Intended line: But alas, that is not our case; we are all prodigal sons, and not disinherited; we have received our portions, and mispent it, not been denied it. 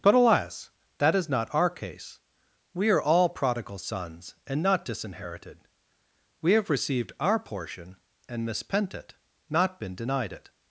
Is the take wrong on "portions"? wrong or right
wrong